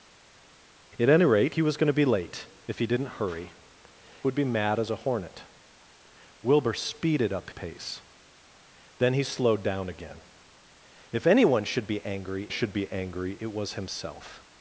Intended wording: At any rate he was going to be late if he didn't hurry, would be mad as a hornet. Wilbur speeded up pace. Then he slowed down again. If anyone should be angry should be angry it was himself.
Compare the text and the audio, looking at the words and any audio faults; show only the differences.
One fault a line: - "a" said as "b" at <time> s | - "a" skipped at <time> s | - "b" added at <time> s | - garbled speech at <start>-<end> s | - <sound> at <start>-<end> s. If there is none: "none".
none